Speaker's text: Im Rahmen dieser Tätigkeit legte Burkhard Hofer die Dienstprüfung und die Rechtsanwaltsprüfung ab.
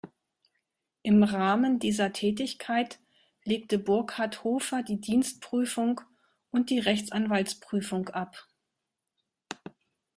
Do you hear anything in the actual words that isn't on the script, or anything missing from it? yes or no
no